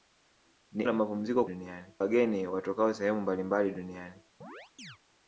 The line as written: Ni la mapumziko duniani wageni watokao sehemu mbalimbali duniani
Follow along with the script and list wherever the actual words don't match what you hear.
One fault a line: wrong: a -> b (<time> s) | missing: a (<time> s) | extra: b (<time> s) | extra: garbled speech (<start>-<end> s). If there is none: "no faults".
no faults